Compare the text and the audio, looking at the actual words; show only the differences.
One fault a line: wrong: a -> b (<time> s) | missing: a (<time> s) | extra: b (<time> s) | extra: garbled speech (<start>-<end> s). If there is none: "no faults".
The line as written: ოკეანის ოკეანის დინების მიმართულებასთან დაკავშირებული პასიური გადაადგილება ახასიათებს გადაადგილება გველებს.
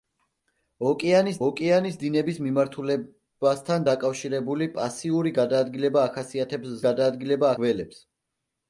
no faults